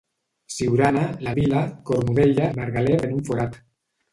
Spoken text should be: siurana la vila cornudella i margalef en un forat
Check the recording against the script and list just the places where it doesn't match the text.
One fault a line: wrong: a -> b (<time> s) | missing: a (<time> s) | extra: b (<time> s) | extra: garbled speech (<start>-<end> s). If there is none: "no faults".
no faults